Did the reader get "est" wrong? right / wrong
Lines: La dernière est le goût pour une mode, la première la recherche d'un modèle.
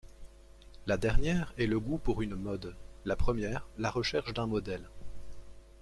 right